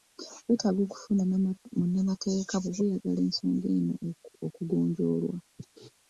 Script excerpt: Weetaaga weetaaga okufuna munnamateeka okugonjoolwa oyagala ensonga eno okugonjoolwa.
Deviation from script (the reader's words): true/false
true